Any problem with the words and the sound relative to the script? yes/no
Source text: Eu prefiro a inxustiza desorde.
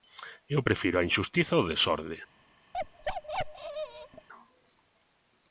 yes